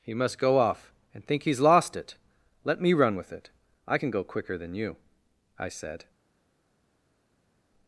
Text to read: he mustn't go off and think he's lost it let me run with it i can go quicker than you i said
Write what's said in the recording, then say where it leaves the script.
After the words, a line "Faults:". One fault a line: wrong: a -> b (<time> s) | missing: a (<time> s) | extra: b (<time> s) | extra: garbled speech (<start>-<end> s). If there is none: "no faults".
he must go off and think he's lost it let me run with it i can go quicker than you i said
Faults:
wrong: mustn't -> must (0.1 s)